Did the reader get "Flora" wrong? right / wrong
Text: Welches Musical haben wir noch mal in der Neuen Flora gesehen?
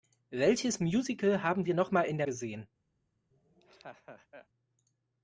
wrong